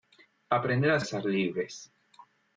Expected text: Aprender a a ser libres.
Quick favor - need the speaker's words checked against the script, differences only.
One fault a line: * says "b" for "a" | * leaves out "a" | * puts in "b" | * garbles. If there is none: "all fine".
all fine